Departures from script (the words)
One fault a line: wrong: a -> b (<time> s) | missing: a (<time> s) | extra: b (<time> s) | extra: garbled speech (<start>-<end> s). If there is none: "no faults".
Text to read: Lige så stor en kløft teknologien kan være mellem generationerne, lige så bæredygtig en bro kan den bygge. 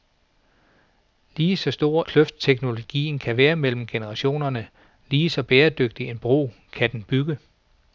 missing: en (2.0 s)